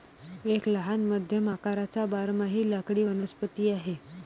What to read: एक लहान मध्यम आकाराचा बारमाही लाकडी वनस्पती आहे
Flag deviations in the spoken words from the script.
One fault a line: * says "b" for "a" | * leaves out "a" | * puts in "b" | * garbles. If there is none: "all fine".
all fine